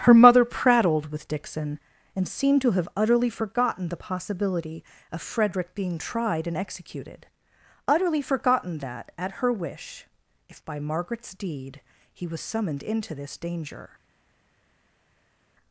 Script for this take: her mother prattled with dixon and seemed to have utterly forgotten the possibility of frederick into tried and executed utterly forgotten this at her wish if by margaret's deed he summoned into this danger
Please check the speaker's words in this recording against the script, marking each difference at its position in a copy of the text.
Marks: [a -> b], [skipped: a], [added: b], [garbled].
her mother prattled with dixon and seemed to have utterly forgotten the possibility of frederick [into -> being] tried and executed utterly forgotten [this -> that] at her wish if by margaret's deed he [added: was] summoned into this danger